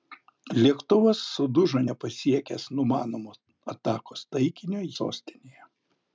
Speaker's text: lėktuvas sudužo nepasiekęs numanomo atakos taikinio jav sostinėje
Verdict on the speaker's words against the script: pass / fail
fail